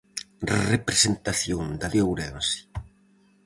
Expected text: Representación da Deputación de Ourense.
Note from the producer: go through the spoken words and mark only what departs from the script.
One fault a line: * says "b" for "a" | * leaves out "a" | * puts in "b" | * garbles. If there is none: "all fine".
* leaves out "Deputación"